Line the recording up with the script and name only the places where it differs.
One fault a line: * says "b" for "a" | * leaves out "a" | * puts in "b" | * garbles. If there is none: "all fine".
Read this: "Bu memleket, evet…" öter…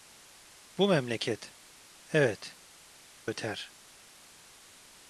all fine